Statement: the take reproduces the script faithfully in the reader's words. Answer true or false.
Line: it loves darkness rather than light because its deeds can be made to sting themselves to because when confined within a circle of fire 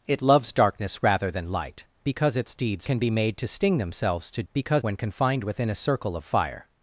true